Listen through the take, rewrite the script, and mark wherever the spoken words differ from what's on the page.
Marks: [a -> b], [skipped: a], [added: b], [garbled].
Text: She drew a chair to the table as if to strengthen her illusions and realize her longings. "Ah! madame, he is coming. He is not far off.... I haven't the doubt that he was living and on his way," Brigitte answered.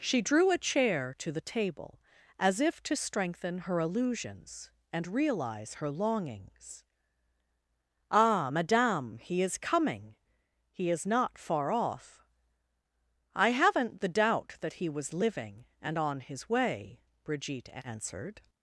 She drew a chair to the table as if to strengthen her illusions and realize her longings. "Ah! madame, he is coming. He is not far off.... I haven't the doubt that he was living and on his way," Brigitte answered.